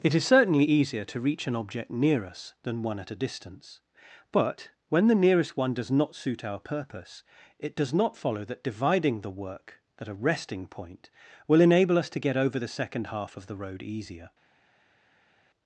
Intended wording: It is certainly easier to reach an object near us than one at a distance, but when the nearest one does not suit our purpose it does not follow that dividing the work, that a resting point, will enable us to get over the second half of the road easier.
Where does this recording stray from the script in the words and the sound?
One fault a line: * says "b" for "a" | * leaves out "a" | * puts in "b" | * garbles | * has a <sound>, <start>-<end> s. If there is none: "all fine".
* says "at" for "that"